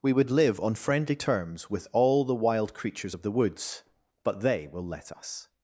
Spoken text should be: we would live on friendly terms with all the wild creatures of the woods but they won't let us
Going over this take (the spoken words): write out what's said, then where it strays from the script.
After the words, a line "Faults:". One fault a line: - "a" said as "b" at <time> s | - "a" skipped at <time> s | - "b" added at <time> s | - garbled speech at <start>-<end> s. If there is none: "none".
we would live on friendly terms with all the wild creatures of the woods but they will let us
Faults:
- "won't" said as "will" at 4.7 s